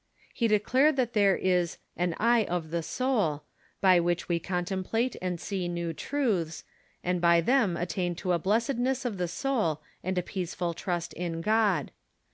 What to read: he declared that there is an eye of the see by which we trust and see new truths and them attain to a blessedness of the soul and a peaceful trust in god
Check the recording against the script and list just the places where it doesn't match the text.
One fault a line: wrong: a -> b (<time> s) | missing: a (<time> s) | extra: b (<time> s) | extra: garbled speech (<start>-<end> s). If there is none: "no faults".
wrong: see -> soul (2.8 s)
wrong: trust -> contemplate (4.4 s)
extra: by (7.2 s)